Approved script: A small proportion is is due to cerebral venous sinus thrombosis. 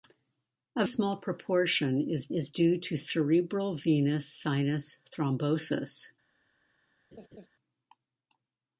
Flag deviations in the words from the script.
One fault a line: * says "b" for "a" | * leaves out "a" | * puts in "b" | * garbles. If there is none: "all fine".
all fine